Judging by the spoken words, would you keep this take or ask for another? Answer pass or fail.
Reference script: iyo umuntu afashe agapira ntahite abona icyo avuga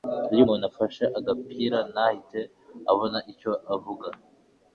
pass